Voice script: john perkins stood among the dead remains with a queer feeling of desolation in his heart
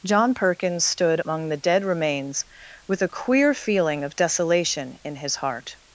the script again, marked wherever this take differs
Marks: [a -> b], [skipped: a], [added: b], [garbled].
john perkins stood among the dead remains with a queer feeling of desolation in his heart